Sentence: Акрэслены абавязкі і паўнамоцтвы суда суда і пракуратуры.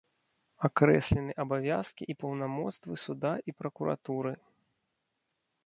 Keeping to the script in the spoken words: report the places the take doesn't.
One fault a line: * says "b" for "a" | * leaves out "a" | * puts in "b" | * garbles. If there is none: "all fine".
* leaves out "суда"